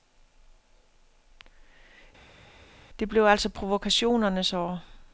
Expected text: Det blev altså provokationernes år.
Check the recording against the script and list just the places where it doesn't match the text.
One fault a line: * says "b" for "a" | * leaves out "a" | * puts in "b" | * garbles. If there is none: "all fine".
all fine